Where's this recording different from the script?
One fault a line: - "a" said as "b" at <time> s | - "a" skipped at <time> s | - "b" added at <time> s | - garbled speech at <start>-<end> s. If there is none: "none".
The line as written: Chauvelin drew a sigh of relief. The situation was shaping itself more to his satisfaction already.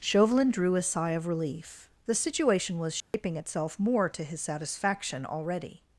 none